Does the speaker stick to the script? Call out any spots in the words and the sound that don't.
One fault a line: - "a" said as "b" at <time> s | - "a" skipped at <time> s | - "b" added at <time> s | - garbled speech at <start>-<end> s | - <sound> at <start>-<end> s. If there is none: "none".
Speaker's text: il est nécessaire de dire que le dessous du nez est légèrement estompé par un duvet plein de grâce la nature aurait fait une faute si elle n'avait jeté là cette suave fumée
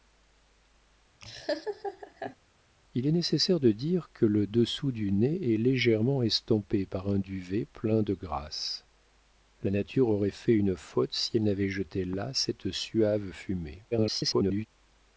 - laugh at 1.2-2.4 s
- garbled speech at 13.9-14.7 s